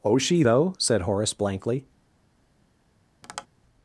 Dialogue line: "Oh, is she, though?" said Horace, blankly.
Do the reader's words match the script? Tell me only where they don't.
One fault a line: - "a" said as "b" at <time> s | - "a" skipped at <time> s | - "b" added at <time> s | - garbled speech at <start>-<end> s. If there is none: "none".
- "is" skipped at 0.2 s